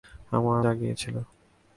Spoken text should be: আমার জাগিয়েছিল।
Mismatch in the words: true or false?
false